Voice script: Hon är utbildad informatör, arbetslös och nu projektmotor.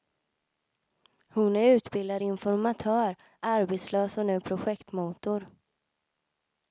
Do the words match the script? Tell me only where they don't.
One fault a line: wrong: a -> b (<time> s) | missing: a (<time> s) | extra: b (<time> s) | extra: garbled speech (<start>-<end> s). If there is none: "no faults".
no faults